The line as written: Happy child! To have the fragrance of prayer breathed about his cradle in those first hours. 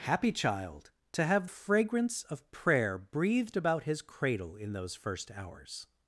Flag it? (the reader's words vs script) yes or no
yes